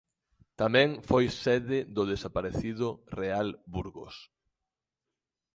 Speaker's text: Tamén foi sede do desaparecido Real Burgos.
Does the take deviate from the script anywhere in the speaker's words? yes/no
no